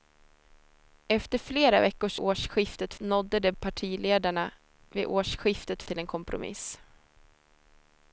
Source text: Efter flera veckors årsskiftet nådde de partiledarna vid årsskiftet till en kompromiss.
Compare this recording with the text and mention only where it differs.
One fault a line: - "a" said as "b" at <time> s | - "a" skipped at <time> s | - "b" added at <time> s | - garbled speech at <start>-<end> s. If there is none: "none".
none